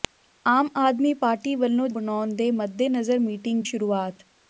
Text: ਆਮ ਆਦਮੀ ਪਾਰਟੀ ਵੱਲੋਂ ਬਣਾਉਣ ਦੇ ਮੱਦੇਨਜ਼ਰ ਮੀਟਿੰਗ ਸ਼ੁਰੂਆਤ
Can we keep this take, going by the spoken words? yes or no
yes